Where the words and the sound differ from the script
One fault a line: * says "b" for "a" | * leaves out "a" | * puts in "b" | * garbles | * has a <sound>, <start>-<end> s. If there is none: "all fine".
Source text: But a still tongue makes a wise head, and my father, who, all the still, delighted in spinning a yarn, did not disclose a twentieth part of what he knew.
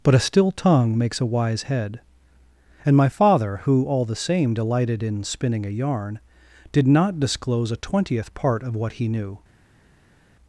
* says "same" for "still"